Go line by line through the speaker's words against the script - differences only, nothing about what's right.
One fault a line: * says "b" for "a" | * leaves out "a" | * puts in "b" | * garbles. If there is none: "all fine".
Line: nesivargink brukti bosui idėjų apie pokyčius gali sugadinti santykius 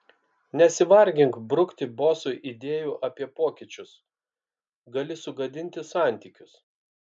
all fine